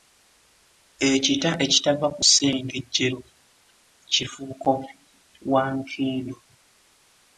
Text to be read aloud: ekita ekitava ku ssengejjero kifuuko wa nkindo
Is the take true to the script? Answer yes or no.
yes